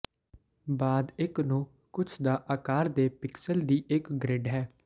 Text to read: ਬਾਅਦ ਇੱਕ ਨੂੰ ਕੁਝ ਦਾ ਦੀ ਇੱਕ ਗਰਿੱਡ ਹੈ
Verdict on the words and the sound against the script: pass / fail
fail